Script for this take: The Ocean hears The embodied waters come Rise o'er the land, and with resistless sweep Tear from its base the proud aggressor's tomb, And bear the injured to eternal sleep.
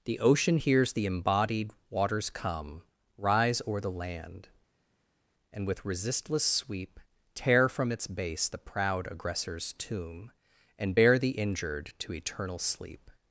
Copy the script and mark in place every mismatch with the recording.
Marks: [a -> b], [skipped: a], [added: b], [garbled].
The Ocean hears The embodied waters come Rise o'er the land, and with resistless sweep Tear from its base the proud aggressor's tomb, And bear the injured to eternal sleep.